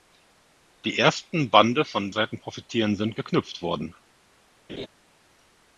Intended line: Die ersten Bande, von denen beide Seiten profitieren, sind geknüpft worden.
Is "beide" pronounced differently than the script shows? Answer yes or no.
yes